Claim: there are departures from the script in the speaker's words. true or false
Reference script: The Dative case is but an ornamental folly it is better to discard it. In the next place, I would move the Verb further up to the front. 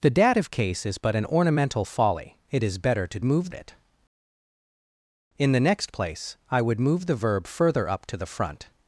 true